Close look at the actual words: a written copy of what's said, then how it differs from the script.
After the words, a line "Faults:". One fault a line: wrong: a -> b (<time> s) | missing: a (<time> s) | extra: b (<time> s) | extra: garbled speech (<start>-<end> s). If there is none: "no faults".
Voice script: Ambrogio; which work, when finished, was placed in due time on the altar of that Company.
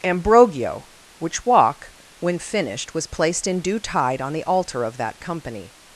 Ambrogio; which walk, when finished, was placed in due tide on the altar of that Company.
Faults:
wrong: work -> walk (1.4 s)
wrong: time -> tide (3.8 s)